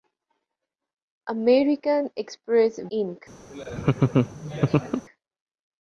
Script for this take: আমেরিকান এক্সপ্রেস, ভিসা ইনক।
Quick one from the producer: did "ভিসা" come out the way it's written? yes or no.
no